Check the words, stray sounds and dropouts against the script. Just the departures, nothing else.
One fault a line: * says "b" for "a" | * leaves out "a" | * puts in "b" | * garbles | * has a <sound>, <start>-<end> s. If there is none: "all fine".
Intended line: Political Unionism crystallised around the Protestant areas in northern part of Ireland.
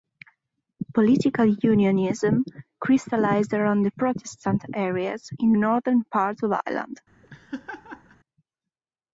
* has a laugh, 7.2-8.2 s